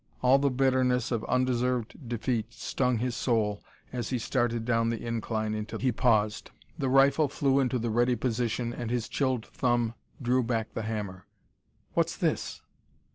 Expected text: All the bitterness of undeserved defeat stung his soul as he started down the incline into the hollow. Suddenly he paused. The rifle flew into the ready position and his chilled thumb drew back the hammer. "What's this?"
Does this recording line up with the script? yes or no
no